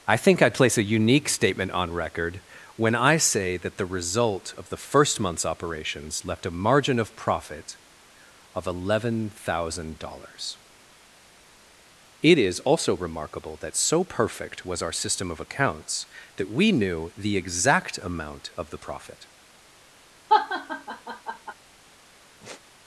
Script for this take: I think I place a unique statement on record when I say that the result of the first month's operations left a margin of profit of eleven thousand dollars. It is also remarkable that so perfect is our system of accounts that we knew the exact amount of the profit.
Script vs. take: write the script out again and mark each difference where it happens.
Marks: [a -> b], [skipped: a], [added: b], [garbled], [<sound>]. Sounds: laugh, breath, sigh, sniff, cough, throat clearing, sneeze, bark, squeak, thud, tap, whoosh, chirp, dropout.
I think I place a unique statement on record when I say that the result of the first month's operations left a margin of profit of eleven thousand dollars. It is also remarkable that so perfect [is -> was] our system of accounts that we knew the exact amount of the profit. [laugh] [sigh]